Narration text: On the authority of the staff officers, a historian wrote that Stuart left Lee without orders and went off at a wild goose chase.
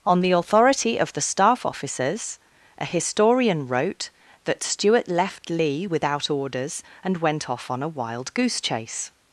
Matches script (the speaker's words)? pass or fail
fail